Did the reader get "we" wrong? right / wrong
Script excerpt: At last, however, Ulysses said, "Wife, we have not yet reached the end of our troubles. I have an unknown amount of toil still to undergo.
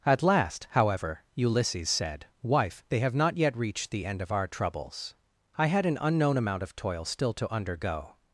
wrong